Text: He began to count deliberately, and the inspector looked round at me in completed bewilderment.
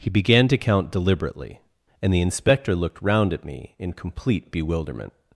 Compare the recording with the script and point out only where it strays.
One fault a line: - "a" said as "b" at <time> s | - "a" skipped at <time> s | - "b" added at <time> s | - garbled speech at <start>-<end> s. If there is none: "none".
- "completed" said as "complete" at 3.9 s